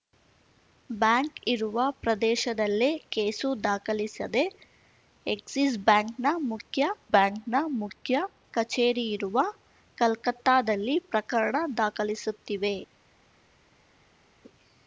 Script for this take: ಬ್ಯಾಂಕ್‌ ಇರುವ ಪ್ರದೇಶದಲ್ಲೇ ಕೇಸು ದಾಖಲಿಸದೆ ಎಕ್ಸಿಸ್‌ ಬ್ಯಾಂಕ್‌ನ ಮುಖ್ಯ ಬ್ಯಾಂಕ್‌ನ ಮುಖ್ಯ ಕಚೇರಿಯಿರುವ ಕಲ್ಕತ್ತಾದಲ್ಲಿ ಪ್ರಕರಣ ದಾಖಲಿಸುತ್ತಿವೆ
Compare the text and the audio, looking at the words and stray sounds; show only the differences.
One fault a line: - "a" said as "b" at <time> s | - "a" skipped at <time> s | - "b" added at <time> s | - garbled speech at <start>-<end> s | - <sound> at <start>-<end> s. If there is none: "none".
none